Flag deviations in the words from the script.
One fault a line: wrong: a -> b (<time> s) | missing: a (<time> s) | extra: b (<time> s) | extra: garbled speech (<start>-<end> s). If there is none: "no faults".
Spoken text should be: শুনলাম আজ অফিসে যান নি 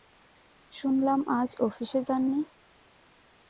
no faults